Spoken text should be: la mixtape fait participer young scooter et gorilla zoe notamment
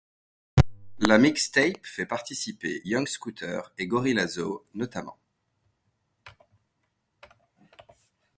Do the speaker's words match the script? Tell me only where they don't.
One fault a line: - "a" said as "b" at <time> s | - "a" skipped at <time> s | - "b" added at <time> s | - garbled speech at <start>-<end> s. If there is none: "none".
none